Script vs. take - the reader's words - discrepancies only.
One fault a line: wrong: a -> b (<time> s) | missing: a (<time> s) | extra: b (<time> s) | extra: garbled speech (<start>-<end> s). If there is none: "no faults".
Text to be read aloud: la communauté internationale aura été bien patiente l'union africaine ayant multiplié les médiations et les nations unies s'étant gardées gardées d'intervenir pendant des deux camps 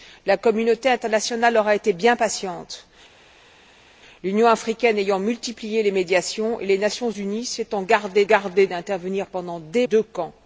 no faults